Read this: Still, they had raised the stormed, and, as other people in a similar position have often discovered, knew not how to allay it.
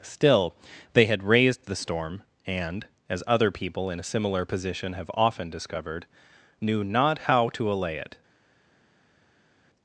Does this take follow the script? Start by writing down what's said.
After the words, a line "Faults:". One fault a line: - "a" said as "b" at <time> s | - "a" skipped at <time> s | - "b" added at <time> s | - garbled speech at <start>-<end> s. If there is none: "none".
Still, they had raised the storm, and, as other people in a similar position have often discovered, knew not how to allay it.
Faults:
- "stormed" said as "storm" at 1.8 s